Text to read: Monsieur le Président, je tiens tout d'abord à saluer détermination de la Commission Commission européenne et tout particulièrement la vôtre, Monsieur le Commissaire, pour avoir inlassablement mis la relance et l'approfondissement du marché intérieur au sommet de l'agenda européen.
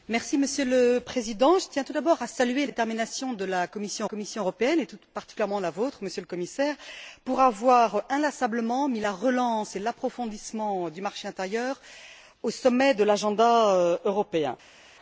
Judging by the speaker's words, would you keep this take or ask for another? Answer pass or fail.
pass